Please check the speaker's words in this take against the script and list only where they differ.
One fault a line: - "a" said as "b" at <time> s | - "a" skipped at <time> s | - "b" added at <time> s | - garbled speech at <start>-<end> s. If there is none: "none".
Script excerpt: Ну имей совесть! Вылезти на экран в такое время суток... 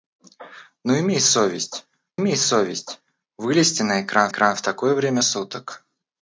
- "имей совесть" added at 2.2 s
- "экран" added at 4.3 s